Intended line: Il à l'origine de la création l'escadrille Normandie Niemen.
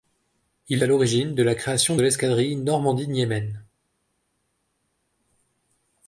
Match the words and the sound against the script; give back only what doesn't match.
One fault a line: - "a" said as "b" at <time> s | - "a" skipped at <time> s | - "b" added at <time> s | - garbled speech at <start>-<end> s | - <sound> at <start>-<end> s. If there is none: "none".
none